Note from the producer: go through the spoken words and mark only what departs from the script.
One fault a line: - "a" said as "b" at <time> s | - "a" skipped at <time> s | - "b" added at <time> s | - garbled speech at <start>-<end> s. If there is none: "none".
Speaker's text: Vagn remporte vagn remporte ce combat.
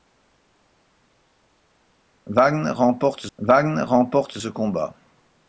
none